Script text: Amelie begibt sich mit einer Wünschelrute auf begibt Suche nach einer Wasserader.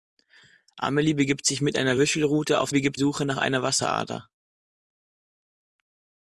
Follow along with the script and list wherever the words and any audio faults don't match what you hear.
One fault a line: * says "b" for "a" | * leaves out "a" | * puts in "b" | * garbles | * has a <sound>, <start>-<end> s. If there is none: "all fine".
all fine